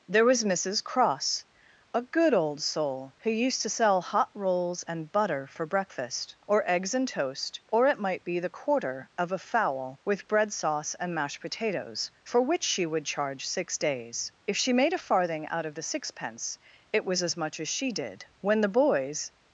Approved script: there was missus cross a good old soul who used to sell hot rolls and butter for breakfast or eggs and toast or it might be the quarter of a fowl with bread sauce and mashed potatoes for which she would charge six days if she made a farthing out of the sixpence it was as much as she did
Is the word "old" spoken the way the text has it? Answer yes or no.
yes